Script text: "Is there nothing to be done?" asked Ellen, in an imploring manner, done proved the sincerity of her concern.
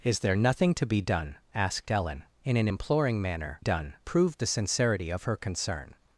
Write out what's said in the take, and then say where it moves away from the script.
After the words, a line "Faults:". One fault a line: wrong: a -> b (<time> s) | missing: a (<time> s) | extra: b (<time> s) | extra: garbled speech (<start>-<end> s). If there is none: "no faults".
"Is there nothing to be done?" asked Ellen, in an imploring manner, done proved the sincerity of her concern.
Faults:
no faults